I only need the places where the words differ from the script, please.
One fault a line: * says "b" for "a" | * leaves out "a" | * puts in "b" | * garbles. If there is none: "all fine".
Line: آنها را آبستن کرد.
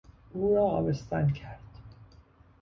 * says "او" for "آنها"